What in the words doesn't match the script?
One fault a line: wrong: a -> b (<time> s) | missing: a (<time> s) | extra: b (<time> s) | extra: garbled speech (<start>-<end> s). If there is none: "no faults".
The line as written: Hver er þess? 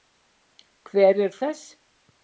no faults